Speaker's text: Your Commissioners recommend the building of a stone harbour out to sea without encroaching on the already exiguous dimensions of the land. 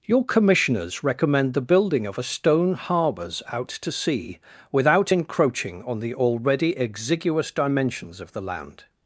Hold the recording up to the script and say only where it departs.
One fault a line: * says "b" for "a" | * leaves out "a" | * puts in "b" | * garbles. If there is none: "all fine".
* says "harbours" for "harbour"